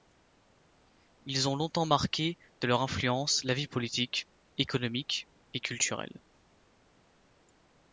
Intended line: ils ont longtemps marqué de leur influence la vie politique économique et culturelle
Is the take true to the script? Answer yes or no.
yes